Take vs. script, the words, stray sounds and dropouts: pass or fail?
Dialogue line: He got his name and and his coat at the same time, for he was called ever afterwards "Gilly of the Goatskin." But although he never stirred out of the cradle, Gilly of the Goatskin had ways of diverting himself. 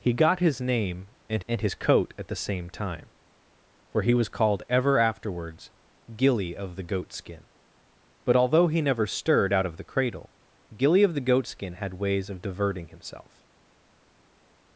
pass